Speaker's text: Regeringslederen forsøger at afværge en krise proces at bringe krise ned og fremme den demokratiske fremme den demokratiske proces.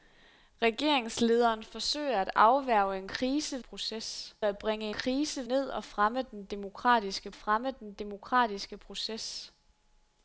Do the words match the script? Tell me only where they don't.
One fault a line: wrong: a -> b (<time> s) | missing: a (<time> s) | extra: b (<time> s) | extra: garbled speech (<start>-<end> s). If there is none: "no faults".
no faults